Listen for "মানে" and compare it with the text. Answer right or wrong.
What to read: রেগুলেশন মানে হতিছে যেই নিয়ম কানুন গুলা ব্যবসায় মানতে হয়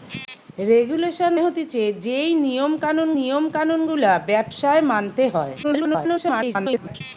wrong